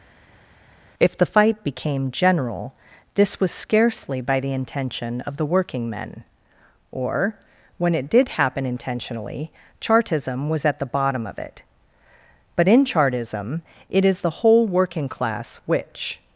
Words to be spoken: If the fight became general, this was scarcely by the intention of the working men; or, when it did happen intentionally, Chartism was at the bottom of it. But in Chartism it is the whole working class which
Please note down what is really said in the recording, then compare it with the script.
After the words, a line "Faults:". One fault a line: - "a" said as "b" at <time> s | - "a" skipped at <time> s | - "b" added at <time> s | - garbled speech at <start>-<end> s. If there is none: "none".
If the fight became general, this was scarcely by the intention of the working men; or, when it did happen intentionally, Chartism was at the bottom of it. But in Chartism it is the whole working class which
Faults:
none